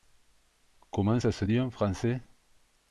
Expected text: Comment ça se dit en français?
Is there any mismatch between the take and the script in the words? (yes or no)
no